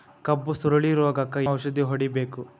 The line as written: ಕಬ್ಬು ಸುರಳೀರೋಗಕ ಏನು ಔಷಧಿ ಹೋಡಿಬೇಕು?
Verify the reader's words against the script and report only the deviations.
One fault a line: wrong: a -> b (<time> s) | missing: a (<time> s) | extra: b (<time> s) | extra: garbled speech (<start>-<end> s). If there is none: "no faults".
missing: ಏನು (1.4 s)